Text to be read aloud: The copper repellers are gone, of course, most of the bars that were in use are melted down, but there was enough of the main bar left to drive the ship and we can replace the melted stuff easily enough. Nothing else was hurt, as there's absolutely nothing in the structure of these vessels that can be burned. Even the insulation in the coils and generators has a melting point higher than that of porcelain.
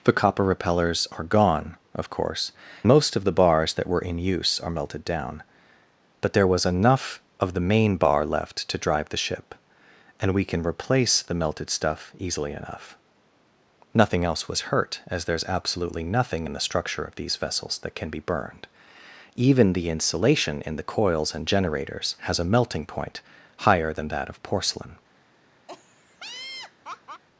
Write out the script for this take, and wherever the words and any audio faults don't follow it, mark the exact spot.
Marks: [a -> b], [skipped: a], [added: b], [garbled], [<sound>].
The copper repellers are gone, of course, most of the bars that were in use are melted down, but there was enough of the main bar left to drive the ship and we can replace the melted stuff easily enough. Nothing else was hurt, as there's absolutely nothing in the structure of these vessels that can be burned. Even the insulation in the coils and generators has a melting point higher than that of porcelain. [laugh]